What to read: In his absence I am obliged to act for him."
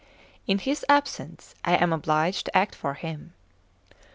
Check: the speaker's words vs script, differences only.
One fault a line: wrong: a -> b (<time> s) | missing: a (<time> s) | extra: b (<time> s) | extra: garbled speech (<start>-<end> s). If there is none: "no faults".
no faults